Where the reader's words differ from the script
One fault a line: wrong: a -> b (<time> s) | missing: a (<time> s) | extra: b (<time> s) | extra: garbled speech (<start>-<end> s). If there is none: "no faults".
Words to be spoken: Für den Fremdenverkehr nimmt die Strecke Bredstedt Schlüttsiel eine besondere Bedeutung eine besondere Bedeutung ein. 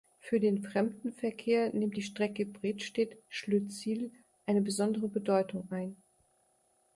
missing: eine besondere Bedeutung (5.7 s)